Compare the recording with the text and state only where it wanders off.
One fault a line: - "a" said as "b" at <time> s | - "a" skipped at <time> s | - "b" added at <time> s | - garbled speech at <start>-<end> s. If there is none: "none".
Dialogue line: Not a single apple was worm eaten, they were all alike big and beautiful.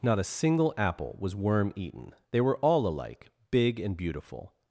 none